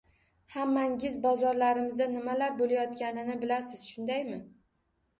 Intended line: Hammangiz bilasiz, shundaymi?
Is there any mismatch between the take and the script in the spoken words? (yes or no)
yes